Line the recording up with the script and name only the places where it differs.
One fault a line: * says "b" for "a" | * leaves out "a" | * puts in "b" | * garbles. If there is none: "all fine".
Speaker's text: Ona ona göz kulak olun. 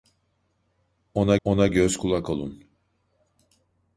all fine